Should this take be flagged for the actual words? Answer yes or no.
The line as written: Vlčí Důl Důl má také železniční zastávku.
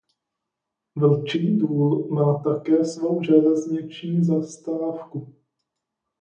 yes